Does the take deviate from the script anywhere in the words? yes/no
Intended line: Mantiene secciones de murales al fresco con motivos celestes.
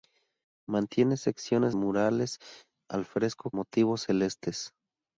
yes